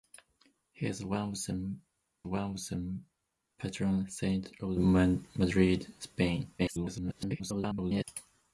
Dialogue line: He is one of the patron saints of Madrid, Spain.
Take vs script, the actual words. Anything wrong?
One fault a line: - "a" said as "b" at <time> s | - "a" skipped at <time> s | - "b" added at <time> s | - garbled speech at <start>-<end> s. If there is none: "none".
- "one of the" added at 2.3 s
- garbled speech at 6.6-8.0 s